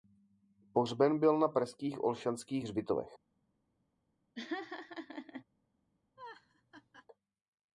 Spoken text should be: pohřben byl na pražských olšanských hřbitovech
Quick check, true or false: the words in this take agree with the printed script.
true